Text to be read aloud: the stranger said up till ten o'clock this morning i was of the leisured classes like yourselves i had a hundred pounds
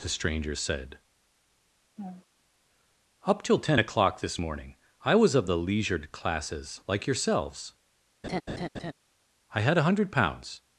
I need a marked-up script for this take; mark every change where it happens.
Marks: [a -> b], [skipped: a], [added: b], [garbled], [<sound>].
the stranger said [laugh] up till ten o'clock this morning i was of the leisured classes like yourselves [laugh] i had a hundred pounds